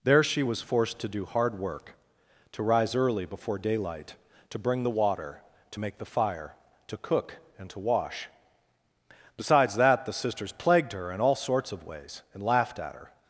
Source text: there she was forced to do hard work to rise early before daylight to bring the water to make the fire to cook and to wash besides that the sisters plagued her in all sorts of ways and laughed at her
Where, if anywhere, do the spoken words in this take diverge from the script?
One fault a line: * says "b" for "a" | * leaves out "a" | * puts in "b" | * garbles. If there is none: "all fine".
all fine